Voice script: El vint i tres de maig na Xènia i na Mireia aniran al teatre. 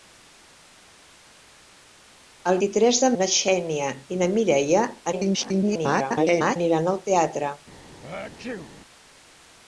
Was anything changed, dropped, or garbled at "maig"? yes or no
yes